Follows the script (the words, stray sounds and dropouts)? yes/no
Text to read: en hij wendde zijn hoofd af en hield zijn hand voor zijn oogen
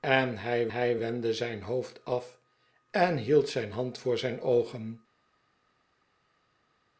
no